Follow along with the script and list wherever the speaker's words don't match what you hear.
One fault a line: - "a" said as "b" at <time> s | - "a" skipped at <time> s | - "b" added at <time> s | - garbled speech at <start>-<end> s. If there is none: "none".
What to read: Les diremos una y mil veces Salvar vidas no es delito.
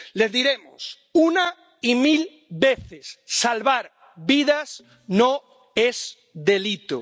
none